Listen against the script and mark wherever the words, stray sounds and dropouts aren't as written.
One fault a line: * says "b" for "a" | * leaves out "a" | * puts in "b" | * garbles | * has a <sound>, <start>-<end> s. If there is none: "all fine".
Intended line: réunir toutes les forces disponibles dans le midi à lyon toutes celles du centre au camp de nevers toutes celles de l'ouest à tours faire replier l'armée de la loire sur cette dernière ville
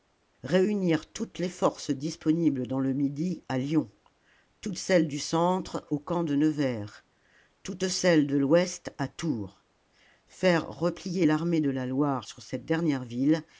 all fine